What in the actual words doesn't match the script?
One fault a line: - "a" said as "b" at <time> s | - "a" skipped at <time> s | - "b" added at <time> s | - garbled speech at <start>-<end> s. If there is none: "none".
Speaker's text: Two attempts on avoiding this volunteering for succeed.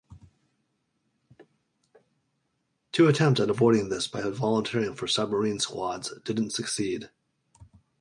- "on" said as "at" at 3.4 s
- "by" added at 4.1 s
- "submarine squads didn't" added at 5.1 s